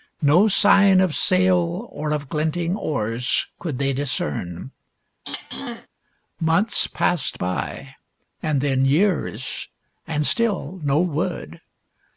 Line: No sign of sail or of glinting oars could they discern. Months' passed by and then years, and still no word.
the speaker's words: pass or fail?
pass